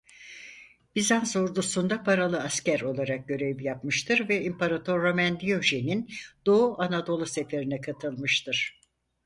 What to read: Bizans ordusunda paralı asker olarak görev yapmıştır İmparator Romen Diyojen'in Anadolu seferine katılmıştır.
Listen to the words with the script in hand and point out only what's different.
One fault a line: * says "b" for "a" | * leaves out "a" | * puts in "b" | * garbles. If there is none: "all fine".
* puts in "ve"
* puts in "Doğu"